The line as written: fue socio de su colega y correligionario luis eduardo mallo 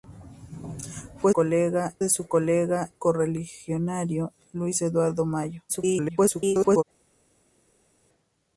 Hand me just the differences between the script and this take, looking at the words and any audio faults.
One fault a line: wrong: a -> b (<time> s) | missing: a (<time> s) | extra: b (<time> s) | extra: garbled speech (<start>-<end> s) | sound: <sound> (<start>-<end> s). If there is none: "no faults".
wrong: socio -> colega (1.3 s)
missing: y (2.9 s)
extra: garbled speech (5.7-6.8 s)